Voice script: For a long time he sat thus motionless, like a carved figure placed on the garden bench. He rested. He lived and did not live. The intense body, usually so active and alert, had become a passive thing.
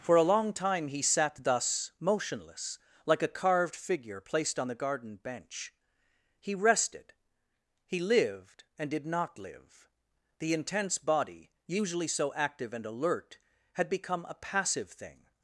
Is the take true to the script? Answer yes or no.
yes